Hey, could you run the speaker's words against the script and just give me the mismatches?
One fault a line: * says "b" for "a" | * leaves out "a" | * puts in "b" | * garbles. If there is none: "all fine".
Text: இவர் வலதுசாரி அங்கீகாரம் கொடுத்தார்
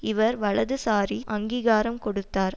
all fine